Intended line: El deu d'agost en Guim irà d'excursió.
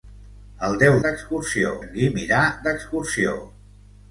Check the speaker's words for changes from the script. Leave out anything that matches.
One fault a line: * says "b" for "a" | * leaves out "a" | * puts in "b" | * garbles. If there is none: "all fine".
* says "d'excursió" for "d'agost"